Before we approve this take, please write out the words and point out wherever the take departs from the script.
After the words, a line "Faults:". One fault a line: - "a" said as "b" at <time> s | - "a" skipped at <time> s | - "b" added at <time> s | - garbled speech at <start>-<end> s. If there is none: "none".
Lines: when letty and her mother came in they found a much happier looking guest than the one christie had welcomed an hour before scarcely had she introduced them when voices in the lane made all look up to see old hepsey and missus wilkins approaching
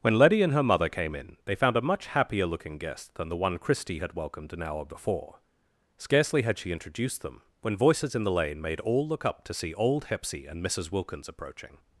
when letty and her mother came in they found a much happier looking guest than the one christie had welcomed an hour before scarcely had she introduced them when voices in the lane made all look up to see old hepsey and missus wilkins approaching
Faults:
none